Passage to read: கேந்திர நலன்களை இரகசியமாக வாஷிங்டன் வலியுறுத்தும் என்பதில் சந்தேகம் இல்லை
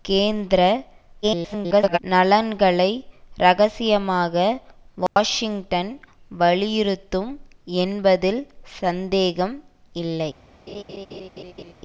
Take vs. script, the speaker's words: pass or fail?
fail